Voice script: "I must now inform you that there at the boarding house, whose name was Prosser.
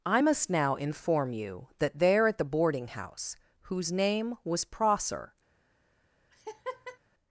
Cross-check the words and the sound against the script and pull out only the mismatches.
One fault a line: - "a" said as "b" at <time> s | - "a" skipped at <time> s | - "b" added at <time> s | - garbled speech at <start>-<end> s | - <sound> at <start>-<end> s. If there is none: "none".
- laugh at 6.3-7.0 s